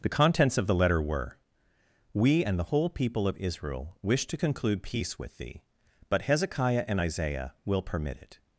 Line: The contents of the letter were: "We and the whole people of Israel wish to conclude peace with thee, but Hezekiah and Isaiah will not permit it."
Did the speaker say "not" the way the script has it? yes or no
no